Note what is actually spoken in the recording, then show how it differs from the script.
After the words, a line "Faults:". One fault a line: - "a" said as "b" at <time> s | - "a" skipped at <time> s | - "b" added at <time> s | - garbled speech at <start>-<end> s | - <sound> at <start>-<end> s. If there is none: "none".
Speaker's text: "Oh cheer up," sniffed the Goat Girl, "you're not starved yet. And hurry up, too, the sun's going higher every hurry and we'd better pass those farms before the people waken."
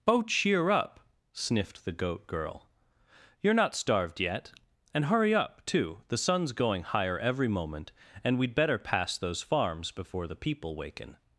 "Oh cheer up," sniffed the Goat Girl, "you're not starved yet. And hurry up, too, the sun's going higher every moment and we'd better pass those farms before the people waken."
Faults:
- "hurry" said as "moment" at 7.5 s